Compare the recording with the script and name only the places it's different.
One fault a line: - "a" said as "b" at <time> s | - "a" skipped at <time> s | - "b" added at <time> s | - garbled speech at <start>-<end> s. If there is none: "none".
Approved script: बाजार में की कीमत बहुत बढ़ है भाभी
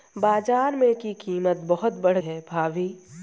none